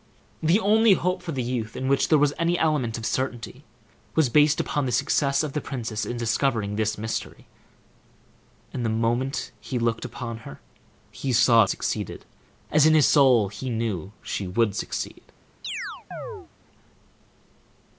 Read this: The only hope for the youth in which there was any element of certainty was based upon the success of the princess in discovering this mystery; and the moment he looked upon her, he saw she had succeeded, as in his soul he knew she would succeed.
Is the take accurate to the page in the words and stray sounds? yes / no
no